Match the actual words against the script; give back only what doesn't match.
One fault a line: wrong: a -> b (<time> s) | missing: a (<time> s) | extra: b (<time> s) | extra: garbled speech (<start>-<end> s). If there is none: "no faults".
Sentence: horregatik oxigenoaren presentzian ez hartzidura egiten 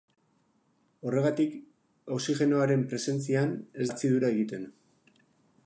no faults